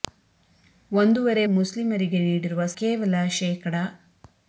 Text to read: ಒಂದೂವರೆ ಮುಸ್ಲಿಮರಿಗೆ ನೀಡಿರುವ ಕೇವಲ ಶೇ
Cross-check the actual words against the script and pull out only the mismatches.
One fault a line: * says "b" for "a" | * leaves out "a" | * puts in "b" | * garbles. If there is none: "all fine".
all fine